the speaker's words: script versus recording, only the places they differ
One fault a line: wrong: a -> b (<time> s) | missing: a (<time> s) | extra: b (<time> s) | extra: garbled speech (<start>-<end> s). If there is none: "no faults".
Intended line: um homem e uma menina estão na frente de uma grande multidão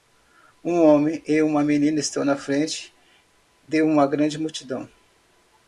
no faults